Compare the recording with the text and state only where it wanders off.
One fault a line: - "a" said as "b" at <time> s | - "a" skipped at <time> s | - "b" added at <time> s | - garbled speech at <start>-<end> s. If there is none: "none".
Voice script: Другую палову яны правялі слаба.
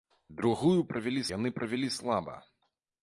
- "палову" said as "правялі" at 0.9 s